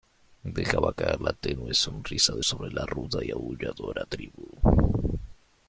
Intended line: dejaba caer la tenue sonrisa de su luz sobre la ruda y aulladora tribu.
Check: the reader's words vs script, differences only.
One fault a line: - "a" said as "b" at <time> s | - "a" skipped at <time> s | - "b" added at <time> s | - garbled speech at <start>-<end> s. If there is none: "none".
- "su luz" skipped at 2.4 s